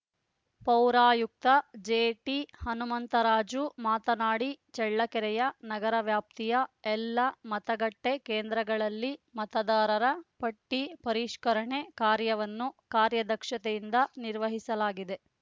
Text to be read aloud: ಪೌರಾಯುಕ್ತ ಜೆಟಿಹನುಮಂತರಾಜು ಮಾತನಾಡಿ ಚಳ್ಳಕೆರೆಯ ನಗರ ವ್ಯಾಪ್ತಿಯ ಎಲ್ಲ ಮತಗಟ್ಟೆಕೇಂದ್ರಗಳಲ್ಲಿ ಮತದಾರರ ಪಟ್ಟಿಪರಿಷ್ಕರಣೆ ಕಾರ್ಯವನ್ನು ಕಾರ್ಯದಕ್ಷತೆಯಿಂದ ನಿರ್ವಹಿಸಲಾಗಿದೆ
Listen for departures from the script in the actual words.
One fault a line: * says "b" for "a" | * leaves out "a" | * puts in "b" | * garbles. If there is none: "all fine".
all fine